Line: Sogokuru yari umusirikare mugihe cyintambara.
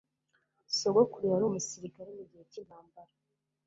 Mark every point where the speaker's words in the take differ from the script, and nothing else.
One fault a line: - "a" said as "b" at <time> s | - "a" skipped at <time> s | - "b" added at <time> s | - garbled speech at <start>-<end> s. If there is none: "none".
none